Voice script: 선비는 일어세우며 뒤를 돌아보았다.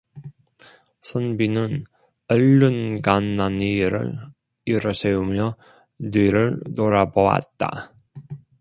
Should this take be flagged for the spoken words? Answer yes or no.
yes